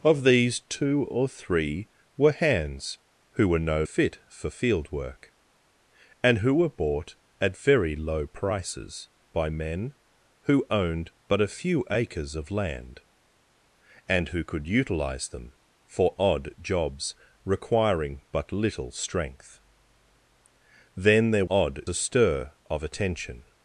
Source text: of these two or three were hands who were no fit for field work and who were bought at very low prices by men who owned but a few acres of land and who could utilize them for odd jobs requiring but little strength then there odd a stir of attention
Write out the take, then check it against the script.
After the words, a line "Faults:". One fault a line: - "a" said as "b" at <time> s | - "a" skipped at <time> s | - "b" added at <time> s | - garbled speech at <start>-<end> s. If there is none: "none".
of these two or three were hands who were no fit for field work and who were bought at very low prices by men who owned but a few acres of land and who could utilize them for odd jobs requiring but little strength then there odd a stir of attention
Faults:
none